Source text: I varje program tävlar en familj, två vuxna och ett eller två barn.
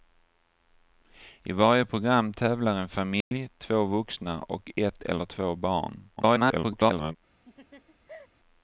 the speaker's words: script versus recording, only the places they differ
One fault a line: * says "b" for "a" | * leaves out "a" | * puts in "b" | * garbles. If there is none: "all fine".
* garbles